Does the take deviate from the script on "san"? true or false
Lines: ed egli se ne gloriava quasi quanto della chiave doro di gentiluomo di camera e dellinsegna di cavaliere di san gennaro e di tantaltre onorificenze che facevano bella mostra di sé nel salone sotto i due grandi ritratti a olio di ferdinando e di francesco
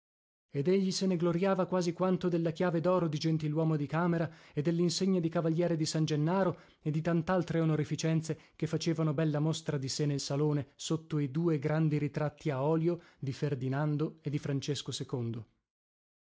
false